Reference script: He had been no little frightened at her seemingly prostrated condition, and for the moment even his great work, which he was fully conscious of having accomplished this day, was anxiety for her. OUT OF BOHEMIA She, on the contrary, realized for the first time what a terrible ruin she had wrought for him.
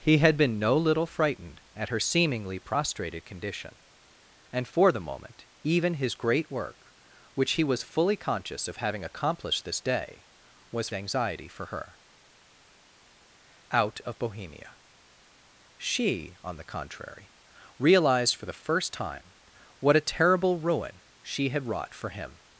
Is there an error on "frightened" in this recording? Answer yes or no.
no